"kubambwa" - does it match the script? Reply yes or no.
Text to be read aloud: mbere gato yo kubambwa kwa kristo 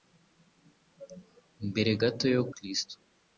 no